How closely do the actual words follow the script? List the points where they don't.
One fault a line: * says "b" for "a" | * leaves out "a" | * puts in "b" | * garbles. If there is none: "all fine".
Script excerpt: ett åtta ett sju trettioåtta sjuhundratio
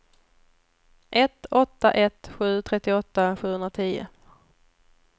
all fine